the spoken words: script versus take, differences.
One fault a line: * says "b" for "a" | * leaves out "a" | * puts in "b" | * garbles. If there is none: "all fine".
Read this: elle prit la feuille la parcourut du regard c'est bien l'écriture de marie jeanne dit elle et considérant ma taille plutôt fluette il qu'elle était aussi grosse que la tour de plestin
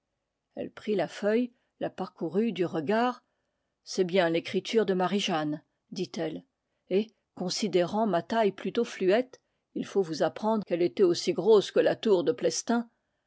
* puts in "faut vous apprendre"